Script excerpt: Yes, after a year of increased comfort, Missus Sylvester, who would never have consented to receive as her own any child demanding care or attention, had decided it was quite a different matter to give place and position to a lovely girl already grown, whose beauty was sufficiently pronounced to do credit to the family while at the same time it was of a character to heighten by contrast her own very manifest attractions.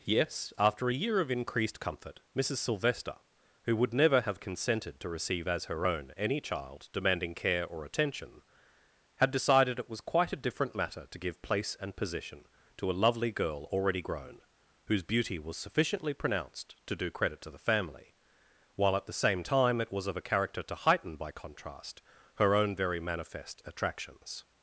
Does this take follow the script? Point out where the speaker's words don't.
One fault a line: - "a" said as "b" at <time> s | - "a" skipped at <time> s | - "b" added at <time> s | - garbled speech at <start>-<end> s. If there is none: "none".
none